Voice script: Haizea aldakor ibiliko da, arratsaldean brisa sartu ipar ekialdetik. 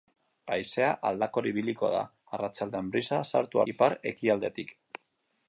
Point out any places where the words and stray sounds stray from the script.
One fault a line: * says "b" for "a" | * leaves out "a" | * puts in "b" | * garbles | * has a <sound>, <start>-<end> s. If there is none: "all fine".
all fine